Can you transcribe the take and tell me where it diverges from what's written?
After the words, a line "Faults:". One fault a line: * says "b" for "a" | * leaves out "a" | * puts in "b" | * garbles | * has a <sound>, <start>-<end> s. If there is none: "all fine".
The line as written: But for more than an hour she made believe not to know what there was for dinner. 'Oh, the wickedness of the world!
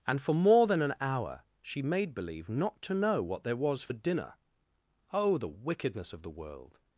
And for more than an hour she made believe not to know what there was for dinner. 'Oh, the wickedness of the world!
Faults:
* says "And" for "But"